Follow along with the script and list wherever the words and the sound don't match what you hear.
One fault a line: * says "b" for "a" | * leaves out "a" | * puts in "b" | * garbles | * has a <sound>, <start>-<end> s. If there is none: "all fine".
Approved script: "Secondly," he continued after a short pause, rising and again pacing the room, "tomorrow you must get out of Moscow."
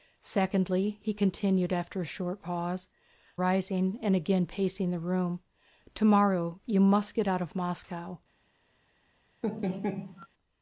* has a laugh, 9.4-10.3 s